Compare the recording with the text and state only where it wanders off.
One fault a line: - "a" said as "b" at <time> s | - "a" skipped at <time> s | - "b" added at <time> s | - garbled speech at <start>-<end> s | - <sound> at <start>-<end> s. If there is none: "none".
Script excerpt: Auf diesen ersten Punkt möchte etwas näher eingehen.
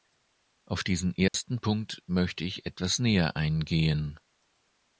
- dropout at 1.3-1.3 s
- "ich" added at 2.4 s